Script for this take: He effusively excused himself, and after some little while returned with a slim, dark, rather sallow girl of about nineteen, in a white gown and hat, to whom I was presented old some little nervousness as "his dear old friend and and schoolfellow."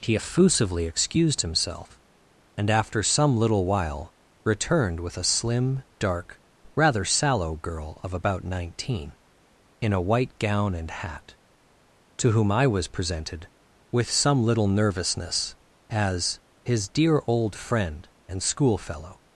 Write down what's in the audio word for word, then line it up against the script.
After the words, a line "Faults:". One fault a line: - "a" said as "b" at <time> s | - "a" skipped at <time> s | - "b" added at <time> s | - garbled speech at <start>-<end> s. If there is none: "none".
He effusively excused himself, and after some little while returned with a slim, dark, rather sallow girl of about nineteen, in a white gown and hat, to whom I was presented with some little nervousness as "his dear old friend and schoolfellow."
Faults:
- "old" said as "with" at 13.9 s
- "and" skipped at 18.4 s